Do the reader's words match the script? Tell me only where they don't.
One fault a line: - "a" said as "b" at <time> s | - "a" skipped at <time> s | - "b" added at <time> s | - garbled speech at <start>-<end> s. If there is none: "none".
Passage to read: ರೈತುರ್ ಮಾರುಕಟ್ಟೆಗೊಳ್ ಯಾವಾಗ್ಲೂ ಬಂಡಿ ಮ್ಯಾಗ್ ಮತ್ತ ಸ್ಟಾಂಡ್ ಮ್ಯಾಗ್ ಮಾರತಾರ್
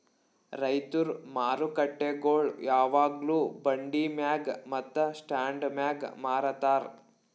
none